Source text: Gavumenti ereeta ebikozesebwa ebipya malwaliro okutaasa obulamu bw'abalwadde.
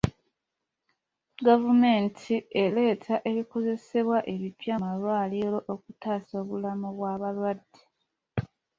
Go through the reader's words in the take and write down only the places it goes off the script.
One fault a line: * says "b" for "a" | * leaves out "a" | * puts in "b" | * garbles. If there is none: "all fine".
all fine